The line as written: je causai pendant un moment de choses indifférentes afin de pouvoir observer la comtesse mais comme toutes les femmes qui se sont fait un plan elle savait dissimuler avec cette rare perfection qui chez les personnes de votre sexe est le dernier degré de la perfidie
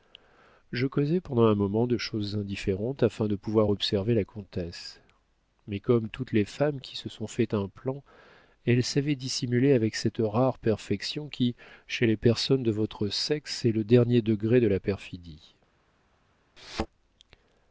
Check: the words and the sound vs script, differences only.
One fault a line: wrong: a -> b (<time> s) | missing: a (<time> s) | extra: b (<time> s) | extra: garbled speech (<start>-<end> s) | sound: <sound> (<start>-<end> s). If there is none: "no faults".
sound: thud (16.6-16.9 s)